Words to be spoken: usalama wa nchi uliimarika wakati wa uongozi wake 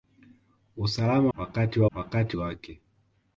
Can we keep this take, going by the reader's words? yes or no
no